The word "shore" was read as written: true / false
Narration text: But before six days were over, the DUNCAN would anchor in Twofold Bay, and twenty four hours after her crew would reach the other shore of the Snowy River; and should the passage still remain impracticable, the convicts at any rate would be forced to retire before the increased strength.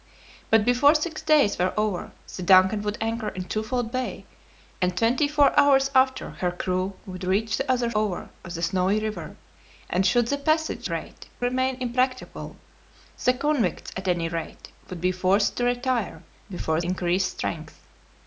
false